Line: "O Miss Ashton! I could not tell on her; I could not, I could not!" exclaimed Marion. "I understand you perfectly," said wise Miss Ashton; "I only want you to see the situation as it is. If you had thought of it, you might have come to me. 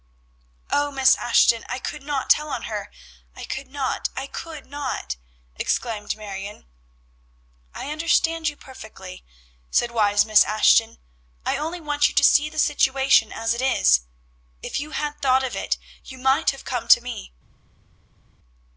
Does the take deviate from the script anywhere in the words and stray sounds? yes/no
no